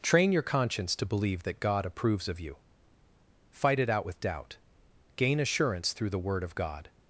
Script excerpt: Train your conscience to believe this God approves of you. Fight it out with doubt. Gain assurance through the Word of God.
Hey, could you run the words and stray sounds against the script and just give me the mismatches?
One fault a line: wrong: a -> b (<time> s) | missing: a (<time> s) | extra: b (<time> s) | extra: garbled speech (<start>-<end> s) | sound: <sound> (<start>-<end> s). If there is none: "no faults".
wrong: this -> that (1.4 s)